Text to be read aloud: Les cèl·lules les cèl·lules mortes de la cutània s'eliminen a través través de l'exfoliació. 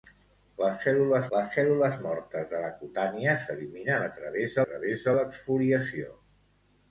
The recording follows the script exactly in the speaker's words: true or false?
true